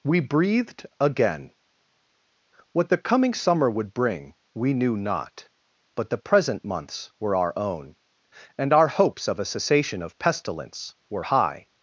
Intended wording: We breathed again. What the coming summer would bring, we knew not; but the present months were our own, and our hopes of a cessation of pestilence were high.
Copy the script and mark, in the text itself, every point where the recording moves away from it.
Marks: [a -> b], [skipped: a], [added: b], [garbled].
We breathed again. What the coming summer would bring, we knew not; but the present months were our own, and our hopes of a cessation of pestilence were high.